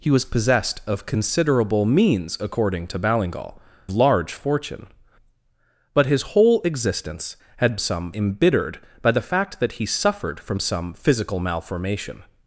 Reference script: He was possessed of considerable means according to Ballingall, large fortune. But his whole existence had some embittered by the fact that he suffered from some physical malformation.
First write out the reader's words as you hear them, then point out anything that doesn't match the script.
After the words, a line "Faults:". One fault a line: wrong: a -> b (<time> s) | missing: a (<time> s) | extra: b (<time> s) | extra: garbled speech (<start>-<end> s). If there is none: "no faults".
He was possessed of considerable means according to Ballingall, large fortune. But his whole existence had some embittered by the fact that he suffered from some physical malformation.
Faults:
no faults